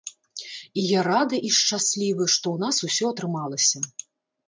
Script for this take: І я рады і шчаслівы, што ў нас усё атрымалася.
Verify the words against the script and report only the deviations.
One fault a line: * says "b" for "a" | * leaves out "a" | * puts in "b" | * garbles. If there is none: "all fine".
all fine